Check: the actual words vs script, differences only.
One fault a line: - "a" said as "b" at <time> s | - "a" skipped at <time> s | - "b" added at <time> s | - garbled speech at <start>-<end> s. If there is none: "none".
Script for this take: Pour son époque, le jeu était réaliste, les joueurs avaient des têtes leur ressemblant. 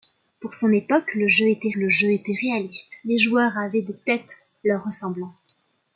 - "le jeu était" added at 1.7 s